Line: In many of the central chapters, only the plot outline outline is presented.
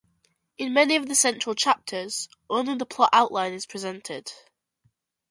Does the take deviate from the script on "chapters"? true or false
false